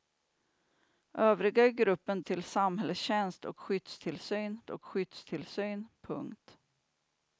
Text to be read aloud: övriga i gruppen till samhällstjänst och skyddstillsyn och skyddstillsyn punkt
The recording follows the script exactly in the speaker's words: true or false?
true